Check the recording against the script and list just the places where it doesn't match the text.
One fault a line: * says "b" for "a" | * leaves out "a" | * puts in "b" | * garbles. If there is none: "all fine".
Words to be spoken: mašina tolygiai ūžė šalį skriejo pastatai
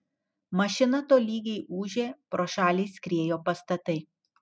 * puts in "pro"